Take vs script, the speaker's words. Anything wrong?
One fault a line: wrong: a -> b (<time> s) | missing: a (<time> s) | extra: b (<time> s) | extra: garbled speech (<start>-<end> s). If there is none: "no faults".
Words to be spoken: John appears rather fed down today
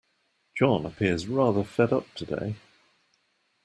wrong: down -> up (1.9 s)